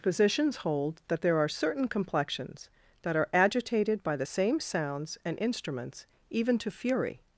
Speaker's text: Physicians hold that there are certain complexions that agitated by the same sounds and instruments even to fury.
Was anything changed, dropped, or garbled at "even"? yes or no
no